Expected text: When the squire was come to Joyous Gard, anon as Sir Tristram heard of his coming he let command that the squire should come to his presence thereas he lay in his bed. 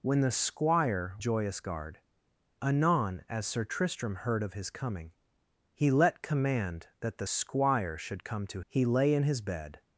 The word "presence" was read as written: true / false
false